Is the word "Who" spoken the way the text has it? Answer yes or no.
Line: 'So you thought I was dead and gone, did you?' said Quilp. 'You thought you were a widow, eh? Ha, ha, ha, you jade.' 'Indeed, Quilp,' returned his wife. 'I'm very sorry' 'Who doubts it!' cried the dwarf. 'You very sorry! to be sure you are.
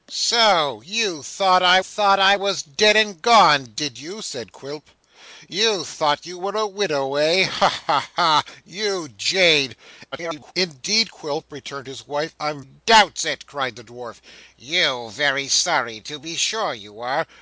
no